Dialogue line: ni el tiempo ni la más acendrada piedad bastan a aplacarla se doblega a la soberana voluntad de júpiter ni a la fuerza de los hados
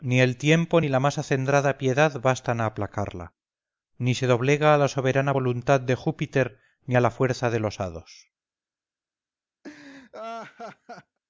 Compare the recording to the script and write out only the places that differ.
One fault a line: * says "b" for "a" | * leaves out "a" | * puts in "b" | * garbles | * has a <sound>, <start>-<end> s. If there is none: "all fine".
* puts in "ni"
* has a laugh, 9.6-11.2 s